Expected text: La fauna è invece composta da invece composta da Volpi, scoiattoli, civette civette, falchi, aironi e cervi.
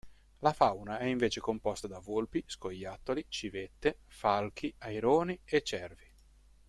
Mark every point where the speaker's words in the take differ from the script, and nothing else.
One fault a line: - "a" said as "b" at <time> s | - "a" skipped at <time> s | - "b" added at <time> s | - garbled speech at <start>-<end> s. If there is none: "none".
- "invece composta da" skipped at 2.0 s
- "civette" skipped at 4.0 s